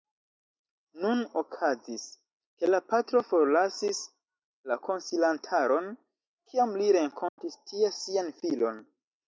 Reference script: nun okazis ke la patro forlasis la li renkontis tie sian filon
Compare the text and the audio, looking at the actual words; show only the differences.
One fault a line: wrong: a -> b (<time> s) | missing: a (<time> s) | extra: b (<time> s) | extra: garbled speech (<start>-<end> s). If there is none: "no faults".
extra: konsilantaron kiam (4.9 s)